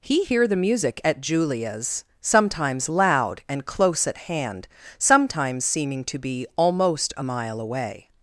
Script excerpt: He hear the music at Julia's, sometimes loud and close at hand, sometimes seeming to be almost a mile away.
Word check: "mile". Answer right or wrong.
right